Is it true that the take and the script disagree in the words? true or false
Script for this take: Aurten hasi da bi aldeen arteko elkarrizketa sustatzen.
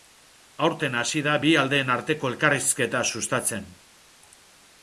false